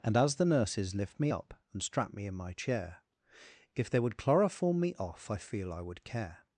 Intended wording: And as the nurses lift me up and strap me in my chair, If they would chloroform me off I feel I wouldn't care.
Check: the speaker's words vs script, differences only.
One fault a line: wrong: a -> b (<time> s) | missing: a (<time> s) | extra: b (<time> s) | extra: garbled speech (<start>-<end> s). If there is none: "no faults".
wrong: wouldn't -> would (5.8 s)